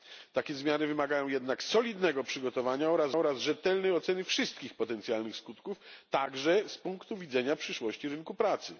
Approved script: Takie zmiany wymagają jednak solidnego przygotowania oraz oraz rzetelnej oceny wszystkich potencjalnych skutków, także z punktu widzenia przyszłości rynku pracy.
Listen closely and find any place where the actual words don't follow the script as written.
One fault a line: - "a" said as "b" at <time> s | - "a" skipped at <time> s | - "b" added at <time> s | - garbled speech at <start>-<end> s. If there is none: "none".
none